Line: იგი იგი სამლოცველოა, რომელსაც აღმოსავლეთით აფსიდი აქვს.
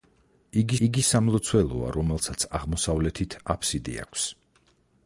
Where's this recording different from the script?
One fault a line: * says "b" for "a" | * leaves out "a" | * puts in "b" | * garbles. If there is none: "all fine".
all fine